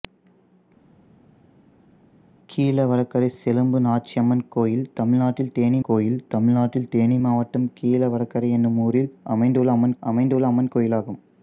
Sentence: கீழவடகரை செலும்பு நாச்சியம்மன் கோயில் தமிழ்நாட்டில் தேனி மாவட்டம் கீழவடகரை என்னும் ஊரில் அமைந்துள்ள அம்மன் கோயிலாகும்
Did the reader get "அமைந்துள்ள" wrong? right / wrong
right